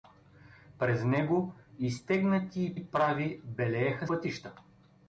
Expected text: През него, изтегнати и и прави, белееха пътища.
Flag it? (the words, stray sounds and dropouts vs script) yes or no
no